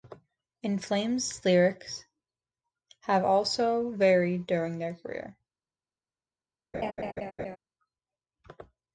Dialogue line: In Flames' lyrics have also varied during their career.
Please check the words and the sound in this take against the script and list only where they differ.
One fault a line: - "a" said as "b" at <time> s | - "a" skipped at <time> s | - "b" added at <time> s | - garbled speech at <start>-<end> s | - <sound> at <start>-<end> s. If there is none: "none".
- laugh at 6.7-7.6 s